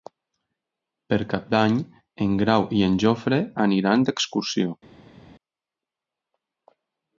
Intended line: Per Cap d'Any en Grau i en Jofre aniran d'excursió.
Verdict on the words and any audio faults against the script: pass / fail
pass